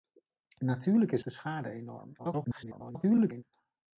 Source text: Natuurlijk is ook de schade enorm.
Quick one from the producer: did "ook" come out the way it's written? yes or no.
no